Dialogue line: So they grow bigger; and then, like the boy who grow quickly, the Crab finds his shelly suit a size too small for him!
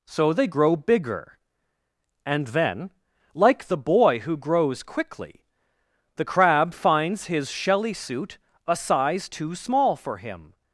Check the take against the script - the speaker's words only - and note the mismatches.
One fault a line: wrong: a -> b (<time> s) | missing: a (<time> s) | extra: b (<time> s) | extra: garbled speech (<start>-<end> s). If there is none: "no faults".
wrong: grow -> grows (4.3 s)